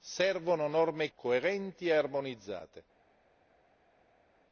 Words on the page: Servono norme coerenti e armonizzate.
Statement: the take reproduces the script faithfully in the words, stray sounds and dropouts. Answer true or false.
true